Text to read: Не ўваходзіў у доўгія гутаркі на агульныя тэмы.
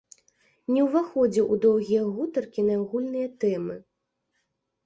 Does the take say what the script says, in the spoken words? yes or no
yes